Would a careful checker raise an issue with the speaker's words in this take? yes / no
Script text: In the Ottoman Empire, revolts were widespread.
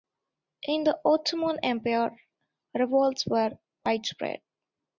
no